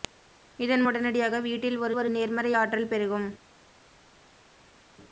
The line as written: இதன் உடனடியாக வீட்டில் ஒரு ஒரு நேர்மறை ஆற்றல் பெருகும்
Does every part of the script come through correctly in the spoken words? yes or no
yes